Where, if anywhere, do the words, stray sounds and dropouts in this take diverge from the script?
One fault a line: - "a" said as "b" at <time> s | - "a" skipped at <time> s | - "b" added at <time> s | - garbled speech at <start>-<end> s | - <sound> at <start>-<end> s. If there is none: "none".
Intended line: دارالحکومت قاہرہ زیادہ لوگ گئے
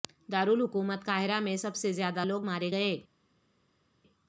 - "میں سب سے" added at 1.4 s
- "مارے" added at 2.4 s